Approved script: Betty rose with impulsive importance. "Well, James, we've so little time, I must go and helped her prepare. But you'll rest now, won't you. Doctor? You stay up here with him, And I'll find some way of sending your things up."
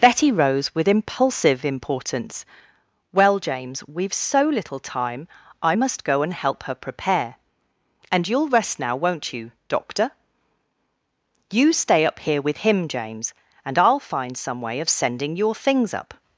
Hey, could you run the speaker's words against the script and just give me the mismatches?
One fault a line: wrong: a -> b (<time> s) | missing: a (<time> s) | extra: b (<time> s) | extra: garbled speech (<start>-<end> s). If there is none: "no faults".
wrong: helped -> help (6.3 s)
wrong: But -> And (8.1 s)
extra: James (12.9 s)